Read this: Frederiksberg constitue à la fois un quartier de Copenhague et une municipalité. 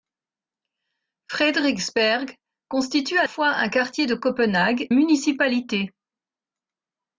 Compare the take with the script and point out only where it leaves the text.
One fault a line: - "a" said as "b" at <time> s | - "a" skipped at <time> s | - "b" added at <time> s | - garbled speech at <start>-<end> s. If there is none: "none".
- "la" skipped at 3.3 s
- "et une" skipped at 4.9 s